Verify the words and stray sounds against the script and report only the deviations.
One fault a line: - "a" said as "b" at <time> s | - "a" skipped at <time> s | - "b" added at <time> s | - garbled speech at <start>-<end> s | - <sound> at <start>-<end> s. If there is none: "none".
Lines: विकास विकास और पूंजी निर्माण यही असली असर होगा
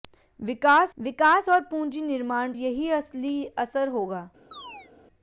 - chirp at 4.5-4.9 s